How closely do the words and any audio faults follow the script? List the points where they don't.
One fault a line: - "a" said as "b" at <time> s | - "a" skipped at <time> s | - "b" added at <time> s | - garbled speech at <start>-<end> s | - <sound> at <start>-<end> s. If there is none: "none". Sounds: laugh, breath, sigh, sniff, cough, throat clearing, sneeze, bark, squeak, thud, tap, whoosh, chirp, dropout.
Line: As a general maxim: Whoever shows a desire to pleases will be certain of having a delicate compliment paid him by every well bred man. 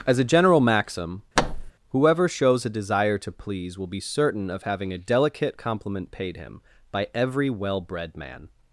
- thud at 1.4-1.7 s
- "pleases" said as "please" at 3.3 s